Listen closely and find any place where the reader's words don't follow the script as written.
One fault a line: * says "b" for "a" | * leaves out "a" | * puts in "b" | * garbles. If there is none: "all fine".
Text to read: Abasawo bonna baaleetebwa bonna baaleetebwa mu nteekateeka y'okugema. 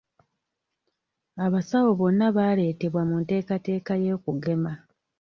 * leaves out "bonna baaleetebwa"